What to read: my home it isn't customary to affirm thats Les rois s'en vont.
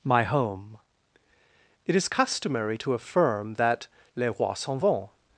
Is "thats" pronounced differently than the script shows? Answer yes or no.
yes